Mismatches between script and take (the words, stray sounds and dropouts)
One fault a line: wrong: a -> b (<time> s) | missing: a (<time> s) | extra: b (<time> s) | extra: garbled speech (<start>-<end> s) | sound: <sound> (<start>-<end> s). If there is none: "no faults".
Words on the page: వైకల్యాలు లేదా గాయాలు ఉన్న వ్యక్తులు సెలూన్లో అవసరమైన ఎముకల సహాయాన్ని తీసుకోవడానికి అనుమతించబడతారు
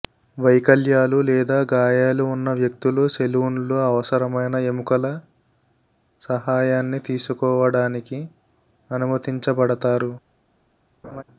sound: laugh (11.0-11.2 s)